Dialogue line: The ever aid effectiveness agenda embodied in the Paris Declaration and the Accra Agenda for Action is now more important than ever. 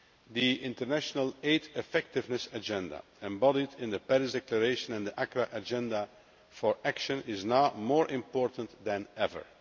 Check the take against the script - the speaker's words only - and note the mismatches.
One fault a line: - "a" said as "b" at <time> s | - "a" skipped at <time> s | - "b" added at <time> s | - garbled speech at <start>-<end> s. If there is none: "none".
- "ever" said as "international" at 0.6 s